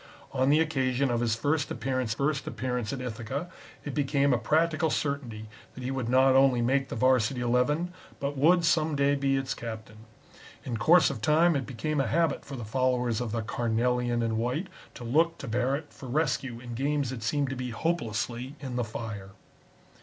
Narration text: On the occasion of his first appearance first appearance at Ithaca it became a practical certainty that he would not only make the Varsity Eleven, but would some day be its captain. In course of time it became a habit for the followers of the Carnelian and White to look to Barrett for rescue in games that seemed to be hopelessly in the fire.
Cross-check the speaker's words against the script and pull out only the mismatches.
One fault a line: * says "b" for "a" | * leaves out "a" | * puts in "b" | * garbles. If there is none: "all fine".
all fine